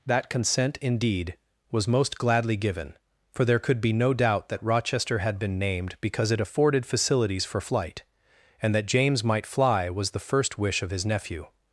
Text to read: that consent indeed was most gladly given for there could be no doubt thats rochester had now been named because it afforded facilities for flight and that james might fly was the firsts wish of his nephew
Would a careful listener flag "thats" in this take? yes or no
yes